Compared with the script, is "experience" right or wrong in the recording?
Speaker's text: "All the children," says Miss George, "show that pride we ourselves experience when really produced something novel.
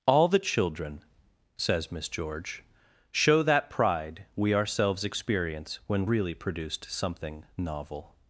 right